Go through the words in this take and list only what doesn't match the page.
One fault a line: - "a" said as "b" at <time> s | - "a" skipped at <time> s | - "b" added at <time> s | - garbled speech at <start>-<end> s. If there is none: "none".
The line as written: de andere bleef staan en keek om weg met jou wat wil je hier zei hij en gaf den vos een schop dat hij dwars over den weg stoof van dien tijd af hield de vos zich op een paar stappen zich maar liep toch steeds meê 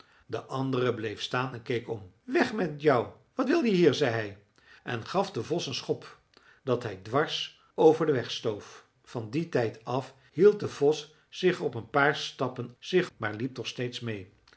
none